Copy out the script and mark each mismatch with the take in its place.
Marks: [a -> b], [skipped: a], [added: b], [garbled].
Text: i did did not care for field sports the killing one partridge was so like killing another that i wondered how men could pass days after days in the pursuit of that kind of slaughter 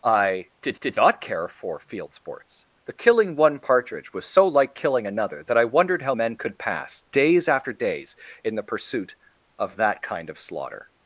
i did did not care for field sports the killing one partridge was so like killing another that i wondered how men could pass days after days in the pursuit of that kind of slaughter